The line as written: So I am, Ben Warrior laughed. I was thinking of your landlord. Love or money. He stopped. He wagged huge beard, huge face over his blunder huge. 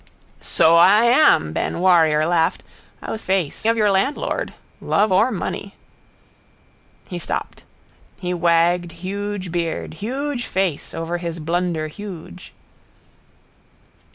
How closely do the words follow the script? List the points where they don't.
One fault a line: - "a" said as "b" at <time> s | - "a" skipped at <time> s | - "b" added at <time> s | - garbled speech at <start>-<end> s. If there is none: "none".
- "thinking" said as "face" at 3.2 s